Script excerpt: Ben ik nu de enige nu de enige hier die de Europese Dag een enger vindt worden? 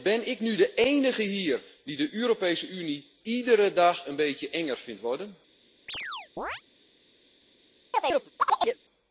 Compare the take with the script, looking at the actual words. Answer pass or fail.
fail